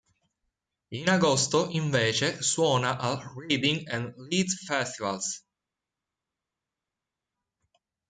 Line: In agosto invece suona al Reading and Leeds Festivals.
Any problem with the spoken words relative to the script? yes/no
no